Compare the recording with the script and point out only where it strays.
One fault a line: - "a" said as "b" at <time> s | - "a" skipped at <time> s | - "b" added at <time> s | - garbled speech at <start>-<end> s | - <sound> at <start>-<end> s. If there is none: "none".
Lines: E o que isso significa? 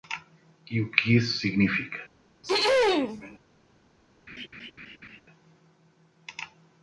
- throat clearing at 2.4-3.4 s
- laugh at 4.3-5.2 s